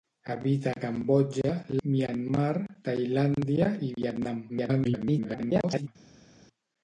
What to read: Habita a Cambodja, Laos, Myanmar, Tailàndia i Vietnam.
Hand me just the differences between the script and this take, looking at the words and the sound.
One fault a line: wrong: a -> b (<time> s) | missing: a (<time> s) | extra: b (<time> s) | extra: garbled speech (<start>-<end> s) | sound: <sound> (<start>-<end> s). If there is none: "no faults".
missing: Laos (1.5 s)
extra: garbled speech (4.5-5.9 s)